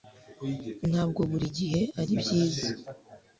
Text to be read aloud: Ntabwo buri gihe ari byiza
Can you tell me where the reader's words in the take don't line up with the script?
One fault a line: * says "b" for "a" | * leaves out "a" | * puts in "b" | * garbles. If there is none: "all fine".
all fine